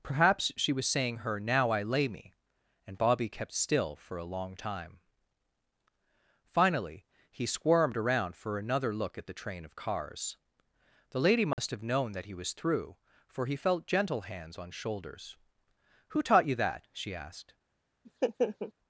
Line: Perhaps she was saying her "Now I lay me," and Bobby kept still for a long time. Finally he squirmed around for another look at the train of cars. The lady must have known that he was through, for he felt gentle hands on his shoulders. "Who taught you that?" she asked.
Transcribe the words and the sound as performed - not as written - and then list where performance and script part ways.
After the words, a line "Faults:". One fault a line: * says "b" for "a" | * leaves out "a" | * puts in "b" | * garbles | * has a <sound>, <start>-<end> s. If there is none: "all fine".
Perhaps she was saying her "Now I lay me," and Bobby kept still for a long time. Finally he squirmed around for another look at the train of cars. The lady must have known that he was through, for he felt gentle hands on shoulders. "Who taught you that?" she asked.
Faults:
* has a dropout, 11.5-11.6 s
* leaves out "his"
* has a laugh, 18.0-18.7 s